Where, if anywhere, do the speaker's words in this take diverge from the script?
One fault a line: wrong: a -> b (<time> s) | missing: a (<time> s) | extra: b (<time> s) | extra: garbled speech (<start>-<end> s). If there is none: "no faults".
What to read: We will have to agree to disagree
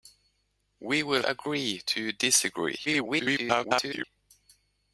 missing: have to (1.2 s)
extra: garbled speech (2.9-4.0 s)